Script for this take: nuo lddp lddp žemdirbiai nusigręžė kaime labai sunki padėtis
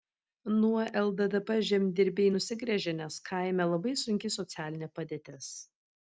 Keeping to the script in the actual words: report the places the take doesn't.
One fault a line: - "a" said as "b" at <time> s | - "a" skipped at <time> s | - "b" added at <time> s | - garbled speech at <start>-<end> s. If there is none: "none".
- "lddp" skipped at 1.5 s
- "nes" added at 3.0 s
- "socialinė" added at 4.4 s